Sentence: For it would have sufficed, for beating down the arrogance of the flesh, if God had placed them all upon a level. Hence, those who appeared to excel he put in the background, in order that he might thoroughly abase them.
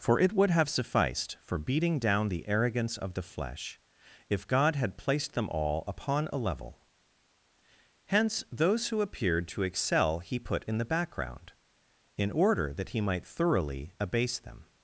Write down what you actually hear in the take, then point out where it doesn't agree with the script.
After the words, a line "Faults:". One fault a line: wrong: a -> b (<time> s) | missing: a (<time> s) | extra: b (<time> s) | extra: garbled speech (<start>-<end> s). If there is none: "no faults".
For it would have sufficed, for beating down the arrogance of the flesh, if God had placed them all upon a level. Hence, those who appeared to excel he put in the background, in order that he might thoroughly abase them.
Faults:
no faults